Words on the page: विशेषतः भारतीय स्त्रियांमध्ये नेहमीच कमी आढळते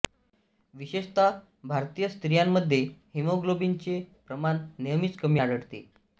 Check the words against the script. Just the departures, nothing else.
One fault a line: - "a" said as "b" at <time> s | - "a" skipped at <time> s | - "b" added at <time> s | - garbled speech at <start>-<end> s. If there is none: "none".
- "हिमोग्लोबिनचे प्रमाण" added at 3.1 s